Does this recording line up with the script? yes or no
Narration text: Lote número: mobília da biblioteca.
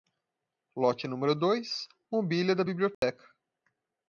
no